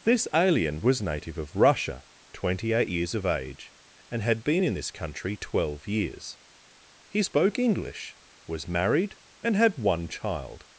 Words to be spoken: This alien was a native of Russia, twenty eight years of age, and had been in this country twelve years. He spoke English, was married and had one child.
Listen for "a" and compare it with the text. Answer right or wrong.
wrong